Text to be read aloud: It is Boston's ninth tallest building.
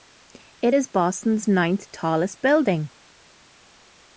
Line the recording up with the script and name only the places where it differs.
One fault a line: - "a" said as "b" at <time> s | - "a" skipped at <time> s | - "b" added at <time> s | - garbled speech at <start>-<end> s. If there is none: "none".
none